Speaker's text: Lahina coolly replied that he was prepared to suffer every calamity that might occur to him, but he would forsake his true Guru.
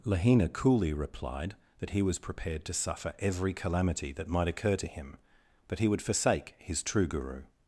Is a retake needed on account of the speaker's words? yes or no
no